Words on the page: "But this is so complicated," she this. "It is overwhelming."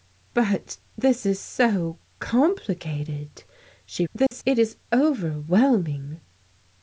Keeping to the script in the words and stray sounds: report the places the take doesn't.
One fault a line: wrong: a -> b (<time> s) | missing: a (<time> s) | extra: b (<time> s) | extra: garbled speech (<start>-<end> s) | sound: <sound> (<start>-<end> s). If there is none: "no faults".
sound: dropout (4.3-4.3 s)